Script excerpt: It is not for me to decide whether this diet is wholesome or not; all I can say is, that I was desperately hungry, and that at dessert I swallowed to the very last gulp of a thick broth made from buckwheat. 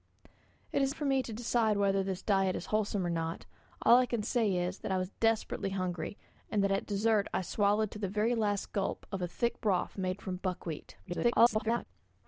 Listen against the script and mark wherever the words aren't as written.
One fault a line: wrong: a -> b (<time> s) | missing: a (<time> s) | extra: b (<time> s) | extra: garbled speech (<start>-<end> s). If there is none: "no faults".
missing: not (0.9 s)
extra: garbled speech (11.0-11.9 s)